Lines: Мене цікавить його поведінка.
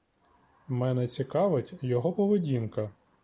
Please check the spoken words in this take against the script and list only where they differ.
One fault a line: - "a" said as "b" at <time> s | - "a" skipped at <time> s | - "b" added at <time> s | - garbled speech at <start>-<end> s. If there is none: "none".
none